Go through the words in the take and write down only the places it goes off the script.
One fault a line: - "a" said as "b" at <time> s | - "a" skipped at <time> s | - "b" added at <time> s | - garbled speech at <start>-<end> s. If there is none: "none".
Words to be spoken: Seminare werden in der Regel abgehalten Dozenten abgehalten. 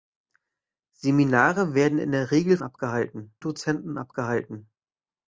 none